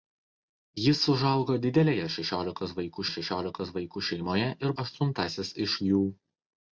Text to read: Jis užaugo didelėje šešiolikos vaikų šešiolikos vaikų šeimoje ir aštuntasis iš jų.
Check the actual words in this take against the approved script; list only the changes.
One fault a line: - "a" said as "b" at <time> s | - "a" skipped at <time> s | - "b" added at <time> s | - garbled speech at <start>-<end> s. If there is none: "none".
none